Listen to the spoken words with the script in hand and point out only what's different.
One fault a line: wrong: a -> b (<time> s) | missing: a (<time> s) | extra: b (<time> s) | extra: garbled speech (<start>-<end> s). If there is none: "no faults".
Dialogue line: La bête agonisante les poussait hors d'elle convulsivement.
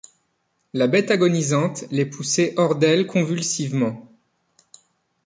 no faults